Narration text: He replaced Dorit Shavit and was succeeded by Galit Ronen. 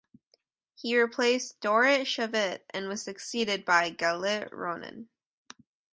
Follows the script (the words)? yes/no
yes